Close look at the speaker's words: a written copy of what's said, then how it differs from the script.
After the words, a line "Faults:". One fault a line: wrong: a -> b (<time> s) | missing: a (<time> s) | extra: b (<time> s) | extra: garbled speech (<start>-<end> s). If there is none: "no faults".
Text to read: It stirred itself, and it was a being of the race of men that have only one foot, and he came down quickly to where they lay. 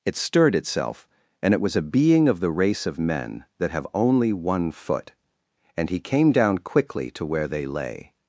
It stirred itself, and it was a being of the race of men that have only one foot, and he came down quickly to where they lay.
Faults:
no faults